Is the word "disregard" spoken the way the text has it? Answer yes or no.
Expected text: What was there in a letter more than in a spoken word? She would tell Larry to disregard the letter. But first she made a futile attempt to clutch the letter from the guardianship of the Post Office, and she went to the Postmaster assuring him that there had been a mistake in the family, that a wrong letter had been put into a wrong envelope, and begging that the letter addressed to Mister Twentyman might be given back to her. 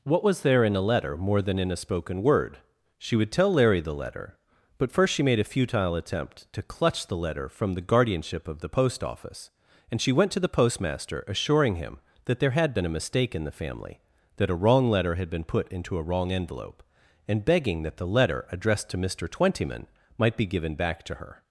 no